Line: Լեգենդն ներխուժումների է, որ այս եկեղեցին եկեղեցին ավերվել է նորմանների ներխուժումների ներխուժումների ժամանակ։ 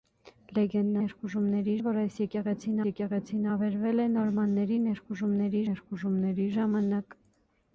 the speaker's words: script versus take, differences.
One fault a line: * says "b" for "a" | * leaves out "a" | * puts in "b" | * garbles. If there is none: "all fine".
all fine